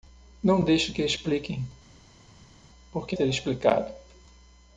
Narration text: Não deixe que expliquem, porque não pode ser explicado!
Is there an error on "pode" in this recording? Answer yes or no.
yes